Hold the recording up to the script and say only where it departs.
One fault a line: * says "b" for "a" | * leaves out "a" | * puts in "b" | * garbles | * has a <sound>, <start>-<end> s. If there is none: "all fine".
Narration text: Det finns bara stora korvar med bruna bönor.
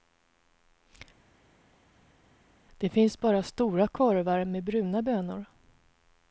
all fine